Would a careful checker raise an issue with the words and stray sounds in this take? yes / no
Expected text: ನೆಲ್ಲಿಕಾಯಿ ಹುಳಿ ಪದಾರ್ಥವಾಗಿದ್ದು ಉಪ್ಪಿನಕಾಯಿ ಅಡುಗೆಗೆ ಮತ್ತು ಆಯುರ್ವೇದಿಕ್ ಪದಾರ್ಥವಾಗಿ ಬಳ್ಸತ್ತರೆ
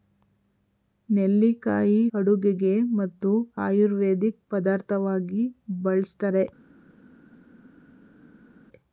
yes